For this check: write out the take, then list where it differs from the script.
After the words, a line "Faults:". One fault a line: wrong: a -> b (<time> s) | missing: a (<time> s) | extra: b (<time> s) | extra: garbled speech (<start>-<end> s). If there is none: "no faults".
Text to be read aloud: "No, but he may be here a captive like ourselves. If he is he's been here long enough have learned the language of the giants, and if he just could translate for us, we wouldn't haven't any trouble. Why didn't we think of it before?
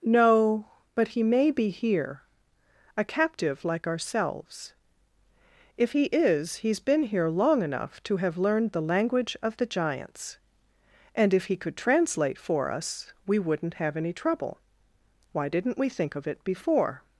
"No, but he may be here a captive like ourselves. If he is he's been here long enough to have learned the language of the giants, and if he could translate for us, we wouldn't have any trouble. Why didn't we think of it before?
Faults:
extra: to (8.0 s)
missing: just (11.6 s)
wrong: haven't -> have (13.7 s)